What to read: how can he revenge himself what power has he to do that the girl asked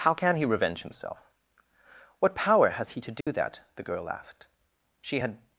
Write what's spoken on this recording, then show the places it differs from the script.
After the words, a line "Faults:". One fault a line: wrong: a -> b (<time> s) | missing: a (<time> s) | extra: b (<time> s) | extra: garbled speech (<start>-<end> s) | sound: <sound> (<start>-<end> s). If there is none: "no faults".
how can he revenge himself what power has he to do that the girl asked she had
Faults:
sound: dropout (3.2-3.3 s)
extra: she had (5.0 s)